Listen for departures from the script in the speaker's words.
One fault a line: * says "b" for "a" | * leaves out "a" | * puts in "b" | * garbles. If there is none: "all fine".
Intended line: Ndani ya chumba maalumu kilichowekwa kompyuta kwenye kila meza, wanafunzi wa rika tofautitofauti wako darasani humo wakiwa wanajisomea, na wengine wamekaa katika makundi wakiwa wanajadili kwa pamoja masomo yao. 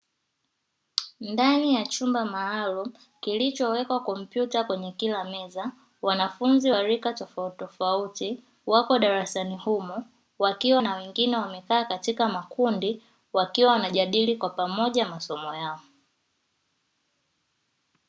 * leaves out "wanajisomea"